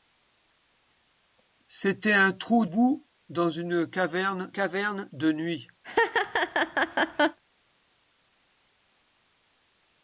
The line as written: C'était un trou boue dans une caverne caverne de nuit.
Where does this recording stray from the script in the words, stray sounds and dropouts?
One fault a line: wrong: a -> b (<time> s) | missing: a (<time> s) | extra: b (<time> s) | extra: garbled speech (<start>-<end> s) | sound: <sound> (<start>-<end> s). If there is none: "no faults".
sound: laugh (5.8-7.4 s)